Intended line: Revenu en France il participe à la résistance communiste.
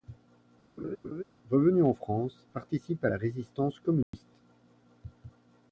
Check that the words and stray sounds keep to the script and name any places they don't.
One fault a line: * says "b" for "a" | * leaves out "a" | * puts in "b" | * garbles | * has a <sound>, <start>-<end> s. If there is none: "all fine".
* has a laugh, 0.8-1.2 s
* leaves out "il"
* has a dropout, 4.0-4.1 s